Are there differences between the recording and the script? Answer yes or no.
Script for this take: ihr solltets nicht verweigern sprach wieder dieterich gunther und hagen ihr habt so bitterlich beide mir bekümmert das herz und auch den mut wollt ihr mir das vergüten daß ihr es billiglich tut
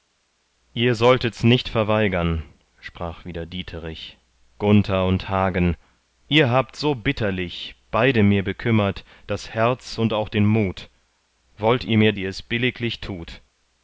yes